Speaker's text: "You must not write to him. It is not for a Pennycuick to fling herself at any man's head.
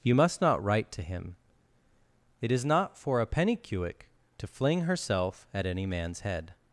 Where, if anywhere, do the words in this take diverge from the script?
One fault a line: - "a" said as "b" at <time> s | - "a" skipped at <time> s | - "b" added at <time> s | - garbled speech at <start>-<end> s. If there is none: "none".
none